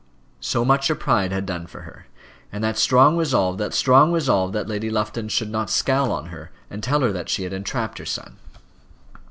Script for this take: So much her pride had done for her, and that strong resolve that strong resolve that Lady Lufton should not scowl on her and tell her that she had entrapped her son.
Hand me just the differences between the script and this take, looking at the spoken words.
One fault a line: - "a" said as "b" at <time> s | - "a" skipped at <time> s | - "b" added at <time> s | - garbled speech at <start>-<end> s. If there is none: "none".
none